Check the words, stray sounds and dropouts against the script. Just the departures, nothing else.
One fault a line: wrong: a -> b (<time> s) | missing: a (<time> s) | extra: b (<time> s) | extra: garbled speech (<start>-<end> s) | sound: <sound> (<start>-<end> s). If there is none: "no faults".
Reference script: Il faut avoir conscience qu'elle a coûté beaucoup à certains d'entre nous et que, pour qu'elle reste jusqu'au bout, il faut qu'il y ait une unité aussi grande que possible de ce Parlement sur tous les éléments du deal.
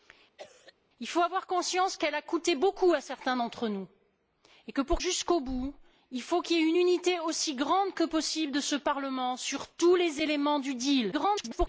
sound: cough (0.4-0.7 s)
missing: qu'elle reste (5.0 s)
extra: garbled speech (11.1-11.7 s)